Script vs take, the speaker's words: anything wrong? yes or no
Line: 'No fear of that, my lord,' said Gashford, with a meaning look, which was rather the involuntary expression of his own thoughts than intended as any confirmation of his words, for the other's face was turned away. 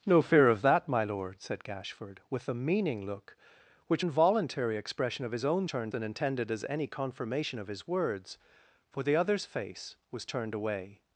yes